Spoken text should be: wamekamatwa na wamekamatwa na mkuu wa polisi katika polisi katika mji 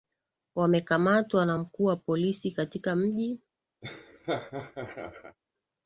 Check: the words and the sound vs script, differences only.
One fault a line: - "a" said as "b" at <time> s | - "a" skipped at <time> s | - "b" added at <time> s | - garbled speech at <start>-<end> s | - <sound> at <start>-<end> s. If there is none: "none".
- "wamekamatwa na" skipped at 1.6 s
- "polisi katika" skipped at 3.0 s
- laugh at 3.8-5.4 s